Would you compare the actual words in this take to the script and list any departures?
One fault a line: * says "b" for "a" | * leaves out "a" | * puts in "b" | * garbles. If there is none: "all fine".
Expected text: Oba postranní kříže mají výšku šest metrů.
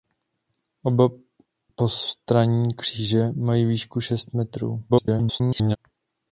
* garbles